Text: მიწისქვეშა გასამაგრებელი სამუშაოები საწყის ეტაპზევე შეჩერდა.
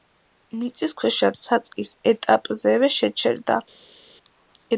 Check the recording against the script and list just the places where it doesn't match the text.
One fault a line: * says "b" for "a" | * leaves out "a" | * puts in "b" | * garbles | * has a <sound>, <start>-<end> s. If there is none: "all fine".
* leaves out "გასამაგრებელი სამუშაოები"